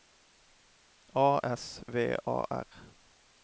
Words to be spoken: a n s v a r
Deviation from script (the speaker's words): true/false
true